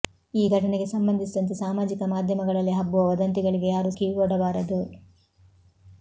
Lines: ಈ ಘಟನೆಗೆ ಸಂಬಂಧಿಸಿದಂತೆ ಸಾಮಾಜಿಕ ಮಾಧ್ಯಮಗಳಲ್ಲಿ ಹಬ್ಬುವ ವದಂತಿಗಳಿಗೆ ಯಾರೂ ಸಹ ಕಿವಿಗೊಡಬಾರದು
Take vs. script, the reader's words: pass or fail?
fail